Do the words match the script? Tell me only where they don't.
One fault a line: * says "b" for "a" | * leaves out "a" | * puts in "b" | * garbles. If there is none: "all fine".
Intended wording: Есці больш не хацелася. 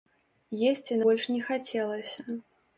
all fine